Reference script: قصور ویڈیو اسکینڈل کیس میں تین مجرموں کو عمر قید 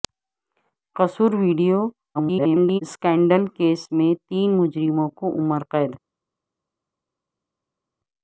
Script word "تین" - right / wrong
right